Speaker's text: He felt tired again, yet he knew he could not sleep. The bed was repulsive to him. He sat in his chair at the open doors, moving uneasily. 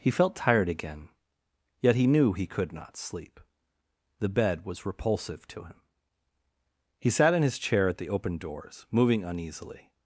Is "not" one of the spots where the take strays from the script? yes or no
no